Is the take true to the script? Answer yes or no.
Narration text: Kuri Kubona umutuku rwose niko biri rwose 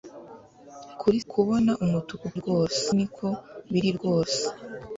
yes